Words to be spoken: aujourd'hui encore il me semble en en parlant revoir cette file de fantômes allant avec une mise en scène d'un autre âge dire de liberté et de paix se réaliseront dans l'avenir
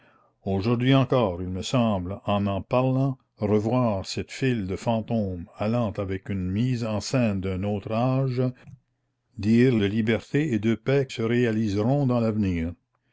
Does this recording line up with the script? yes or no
yes